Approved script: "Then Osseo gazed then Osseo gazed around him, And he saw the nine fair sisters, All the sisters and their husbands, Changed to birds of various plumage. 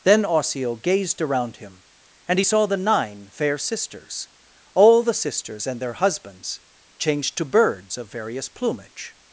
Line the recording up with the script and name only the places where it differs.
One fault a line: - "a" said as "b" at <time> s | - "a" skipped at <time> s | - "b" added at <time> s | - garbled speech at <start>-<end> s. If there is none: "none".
- "then Osseo gazed" skipped at 1.2 s